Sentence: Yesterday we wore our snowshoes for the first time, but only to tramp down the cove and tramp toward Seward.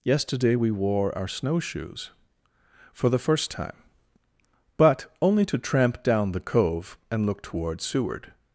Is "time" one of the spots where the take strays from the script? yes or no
no